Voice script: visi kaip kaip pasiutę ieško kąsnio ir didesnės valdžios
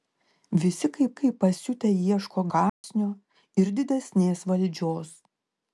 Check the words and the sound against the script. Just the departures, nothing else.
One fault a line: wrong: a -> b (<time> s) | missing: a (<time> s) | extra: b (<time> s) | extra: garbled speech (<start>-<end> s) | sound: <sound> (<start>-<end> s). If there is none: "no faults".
sound: dropout (2.7-2.8 s)